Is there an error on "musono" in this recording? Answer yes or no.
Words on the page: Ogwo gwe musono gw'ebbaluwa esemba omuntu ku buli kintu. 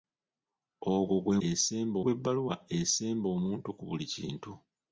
yes